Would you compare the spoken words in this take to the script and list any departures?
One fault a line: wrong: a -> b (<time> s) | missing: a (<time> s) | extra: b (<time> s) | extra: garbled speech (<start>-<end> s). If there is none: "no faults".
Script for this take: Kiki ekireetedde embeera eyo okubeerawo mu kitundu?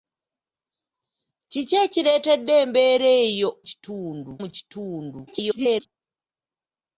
wrong: okubeerawo -> kitundu (3.7 s)
extra: garbled speech (5.3-5.9 s)